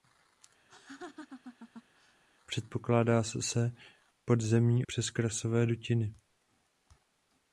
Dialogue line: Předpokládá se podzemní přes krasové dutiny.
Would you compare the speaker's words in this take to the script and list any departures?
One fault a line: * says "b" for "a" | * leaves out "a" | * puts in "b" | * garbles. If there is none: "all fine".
all fine